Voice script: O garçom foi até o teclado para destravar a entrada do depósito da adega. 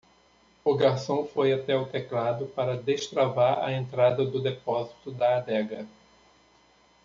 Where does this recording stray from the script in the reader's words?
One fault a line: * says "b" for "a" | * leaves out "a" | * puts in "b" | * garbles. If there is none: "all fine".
all fine